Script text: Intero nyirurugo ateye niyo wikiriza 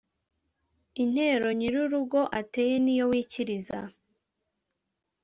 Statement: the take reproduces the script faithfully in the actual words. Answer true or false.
true